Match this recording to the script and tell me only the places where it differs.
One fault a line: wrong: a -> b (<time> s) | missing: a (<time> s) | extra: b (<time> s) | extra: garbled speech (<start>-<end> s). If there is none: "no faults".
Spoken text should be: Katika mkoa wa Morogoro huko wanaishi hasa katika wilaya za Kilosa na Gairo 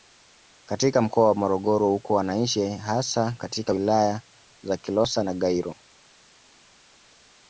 no faults